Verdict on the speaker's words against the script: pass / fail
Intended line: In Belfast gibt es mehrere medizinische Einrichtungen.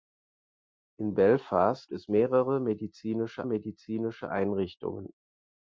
fail